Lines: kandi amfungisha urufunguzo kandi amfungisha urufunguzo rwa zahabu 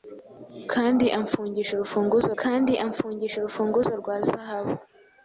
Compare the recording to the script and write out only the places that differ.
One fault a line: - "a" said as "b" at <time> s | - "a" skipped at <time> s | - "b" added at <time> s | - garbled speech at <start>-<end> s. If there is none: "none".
none